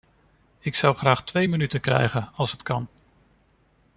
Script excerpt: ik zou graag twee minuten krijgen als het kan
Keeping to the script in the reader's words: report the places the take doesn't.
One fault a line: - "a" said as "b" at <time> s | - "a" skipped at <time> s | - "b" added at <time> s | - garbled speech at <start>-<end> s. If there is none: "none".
none